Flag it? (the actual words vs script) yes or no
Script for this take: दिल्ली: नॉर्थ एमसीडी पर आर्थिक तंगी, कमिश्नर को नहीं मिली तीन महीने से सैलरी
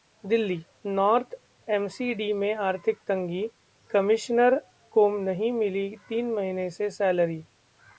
yes